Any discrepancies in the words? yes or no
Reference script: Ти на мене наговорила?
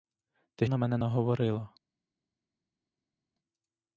no